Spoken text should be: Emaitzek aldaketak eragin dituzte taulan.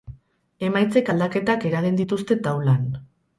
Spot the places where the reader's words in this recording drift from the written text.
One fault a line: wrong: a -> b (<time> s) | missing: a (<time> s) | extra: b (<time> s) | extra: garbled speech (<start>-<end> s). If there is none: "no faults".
no faults